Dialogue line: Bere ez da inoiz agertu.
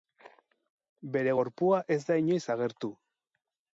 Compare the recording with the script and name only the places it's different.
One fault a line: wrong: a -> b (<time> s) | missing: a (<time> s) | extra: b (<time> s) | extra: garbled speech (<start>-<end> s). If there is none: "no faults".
extra: gorpua (1.4 s)